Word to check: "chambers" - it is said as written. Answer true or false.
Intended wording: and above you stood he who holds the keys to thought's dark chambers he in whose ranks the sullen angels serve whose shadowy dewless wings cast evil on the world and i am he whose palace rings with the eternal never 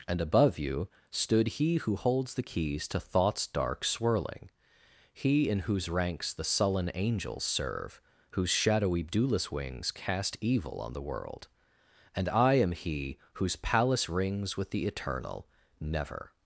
false